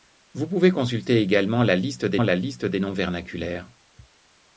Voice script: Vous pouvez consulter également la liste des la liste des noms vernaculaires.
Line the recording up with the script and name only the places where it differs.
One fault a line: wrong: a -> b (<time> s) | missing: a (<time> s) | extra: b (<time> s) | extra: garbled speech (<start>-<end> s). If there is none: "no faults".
no faults